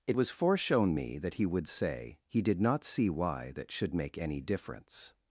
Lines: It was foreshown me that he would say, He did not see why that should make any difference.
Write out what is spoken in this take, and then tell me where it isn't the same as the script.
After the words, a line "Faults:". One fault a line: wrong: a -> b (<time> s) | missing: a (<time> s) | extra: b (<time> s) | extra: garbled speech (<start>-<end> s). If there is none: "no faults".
It was foreshown me that he would say, He did not see why that should make any difference.
Faults:
no faults